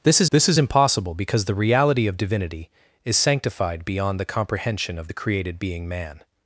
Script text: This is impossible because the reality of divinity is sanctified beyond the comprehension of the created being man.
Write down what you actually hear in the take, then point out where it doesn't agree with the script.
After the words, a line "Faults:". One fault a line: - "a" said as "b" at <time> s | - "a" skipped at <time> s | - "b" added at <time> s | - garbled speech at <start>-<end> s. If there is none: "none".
This is this is impossible because the reality of divinity is sanctified beyond the comprehension of the created being man.
Faults:
- "this is" added at 0.3 s